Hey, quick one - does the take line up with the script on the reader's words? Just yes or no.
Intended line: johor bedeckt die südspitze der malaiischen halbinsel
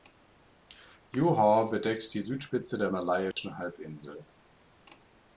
yes